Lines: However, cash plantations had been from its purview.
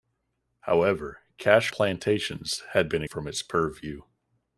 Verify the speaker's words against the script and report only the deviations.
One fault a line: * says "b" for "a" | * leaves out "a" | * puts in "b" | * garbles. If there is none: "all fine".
all fine